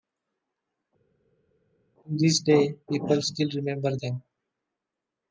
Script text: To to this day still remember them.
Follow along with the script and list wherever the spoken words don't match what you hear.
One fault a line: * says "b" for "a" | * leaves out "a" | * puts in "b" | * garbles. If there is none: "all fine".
* leaves out "to"
* puts in "people"